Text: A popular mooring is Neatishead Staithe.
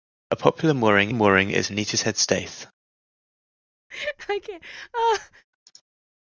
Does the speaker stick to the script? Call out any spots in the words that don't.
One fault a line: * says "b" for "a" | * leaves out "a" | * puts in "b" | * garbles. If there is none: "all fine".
* puts in "mooring"